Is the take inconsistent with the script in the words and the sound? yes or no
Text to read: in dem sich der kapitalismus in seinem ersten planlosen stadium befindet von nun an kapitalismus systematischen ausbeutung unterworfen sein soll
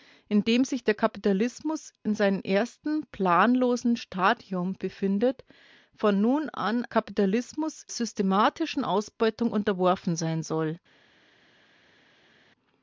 no